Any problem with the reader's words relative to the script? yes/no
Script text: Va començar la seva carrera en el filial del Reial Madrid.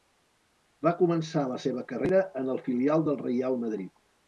no